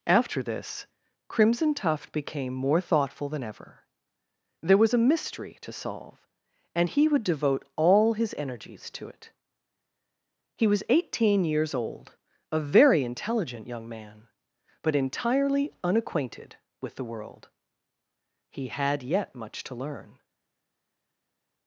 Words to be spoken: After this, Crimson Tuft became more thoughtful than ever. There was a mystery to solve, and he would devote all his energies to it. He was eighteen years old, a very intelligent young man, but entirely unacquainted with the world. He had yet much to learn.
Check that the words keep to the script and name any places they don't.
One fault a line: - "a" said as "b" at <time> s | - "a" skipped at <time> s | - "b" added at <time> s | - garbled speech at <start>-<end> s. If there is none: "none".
none